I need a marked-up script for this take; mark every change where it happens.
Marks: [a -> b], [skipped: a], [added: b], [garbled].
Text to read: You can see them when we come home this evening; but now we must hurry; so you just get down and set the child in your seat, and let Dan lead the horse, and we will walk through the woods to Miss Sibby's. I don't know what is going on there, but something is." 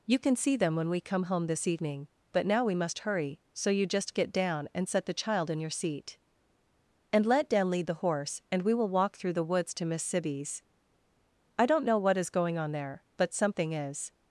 You can see them when we come home this evening; but now we must hurry; so you just get down and set the child in your seat, and let Dan lead the horse, and we will walk through the woods to Miss Sibby's. I don't know what is going on there, but something is."